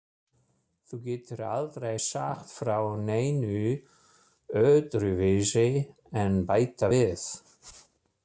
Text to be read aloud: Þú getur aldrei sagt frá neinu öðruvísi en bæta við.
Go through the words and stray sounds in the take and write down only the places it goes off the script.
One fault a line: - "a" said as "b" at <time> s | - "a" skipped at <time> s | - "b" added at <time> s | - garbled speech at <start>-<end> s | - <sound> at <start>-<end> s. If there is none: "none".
none